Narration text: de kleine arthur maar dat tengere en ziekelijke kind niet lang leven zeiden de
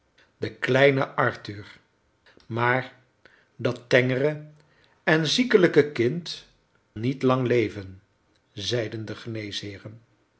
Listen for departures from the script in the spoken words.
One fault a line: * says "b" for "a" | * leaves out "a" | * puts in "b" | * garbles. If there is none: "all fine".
all fine